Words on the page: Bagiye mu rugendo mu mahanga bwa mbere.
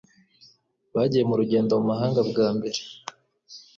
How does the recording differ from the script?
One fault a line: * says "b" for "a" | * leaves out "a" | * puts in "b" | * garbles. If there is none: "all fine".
all fine